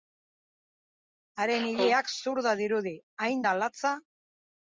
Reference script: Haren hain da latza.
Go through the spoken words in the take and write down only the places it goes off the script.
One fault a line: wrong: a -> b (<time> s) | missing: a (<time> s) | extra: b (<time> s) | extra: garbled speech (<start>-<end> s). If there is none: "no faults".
extra: ileak zurda dirudi (1.7 s)